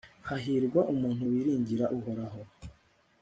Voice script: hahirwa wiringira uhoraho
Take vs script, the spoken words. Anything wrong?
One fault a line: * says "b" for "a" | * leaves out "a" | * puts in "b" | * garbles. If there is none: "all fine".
* puts in "umuntu"